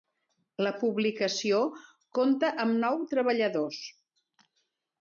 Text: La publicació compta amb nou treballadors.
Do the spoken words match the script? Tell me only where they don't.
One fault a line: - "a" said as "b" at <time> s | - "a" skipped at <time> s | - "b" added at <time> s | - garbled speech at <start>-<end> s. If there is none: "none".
none